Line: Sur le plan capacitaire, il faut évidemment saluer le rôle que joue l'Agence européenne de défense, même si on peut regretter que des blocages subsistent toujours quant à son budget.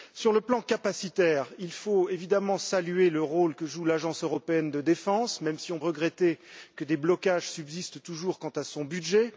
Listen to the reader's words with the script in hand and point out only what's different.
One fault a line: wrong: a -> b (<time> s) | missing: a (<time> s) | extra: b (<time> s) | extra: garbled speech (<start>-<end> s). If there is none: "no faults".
missing: peut (5.8 s)